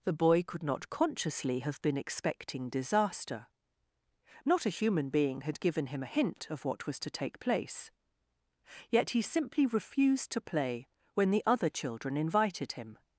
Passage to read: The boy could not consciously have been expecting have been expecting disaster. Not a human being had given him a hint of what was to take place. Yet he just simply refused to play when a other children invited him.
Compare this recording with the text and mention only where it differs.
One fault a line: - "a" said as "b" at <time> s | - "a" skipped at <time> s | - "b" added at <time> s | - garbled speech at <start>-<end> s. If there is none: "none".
- "have been expecting" skipped at 2.7 s
- "just" skipped at 9.2 s
- "a" said as "the" at 11.3 s